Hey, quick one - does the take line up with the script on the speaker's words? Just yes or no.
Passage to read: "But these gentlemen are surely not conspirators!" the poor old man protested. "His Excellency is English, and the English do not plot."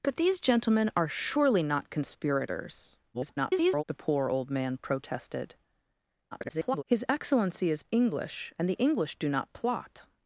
no